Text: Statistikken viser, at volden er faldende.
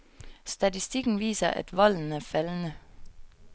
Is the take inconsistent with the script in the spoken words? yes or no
no